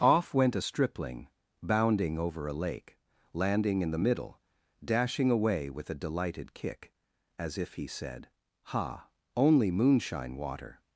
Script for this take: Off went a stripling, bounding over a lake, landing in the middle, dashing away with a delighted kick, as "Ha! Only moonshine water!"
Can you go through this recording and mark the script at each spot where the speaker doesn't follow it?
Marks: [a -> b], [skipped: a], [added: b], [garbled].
Off went a stripling, bounding over a lake, landing in the middle, dashing away with a delighted kick, as [added: if he said] "Ha! Only moonshine water!"